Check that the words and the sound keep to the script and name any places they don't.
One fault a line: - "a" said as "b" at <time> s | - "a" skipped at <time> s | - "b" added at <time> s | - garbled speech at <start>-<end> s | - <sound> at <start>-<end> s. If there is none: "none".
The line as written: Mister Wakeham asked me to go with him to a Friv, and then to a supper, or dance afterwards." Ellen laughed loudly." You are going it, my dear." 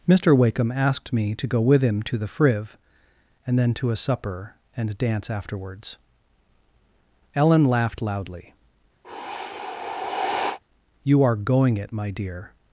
- "a" said as "the" at 2.2 s
- "or" said as "and" at 4.8 s
- sigh at 9.0-10.6 s